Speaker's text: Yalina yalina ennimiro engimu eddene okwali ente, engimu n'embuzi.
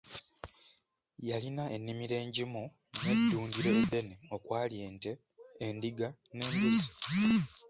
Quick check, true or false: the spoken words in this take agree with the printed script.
false